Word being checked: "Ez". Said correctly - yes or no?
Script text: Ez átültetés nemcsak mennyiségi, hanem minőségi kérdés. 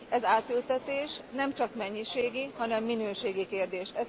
yes